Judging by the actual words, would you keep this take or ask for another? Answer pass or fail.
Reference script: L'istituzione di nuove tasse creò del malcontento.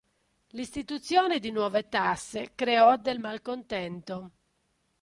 pass